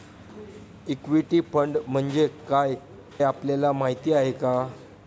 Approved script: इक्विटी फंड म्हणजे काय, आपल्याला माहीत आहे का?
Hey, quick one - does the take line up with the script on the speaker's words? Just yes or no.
yes